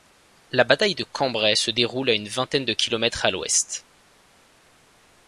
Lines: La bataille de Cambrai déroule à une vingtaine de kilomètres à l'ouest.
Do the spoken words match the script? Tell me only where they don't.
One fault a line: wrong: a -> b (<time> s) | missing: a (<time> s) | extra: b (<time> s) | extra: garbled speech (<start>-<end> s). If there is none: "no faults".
extra: se (1.5 s)